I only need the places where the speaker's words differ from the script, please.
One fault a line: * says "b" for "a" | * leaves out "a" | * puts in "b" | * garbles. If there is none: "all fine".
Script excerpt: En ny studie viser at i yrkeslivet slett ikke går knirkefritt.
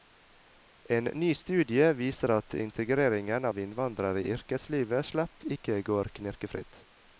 * puts in "integreringen av innvandrere"